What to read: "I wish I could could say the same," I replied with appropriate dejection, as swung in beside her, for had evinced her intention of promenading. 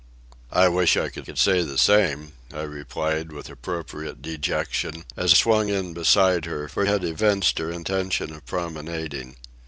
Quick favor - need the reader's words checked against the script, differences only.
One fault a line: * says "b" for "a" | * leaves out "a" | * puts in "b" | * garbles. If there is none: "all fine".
all fine